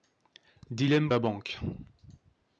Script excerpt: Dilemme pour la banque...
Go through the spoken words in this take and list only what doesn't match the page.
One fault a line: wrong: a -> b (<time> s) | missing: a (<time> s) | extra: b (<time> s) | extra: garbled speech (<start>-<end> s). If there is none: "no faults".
missing: pour (1.1 s)